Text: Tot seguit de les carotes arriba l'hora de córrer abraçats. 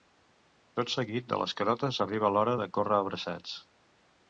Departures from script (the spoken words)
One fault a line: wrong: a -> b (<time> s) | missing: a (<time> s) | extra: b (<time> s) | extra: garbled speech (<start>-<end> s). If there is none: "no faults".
no faults